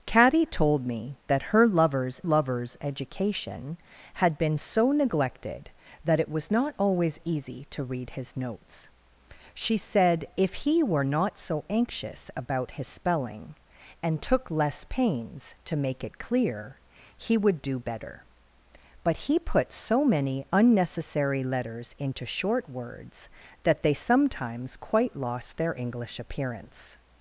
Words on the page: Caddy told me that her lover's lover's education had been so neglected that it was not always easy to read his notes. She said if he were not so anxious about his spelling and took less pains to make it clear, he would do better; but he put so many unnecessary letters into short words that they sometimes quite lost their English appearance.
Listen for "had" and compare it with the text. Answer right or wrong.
right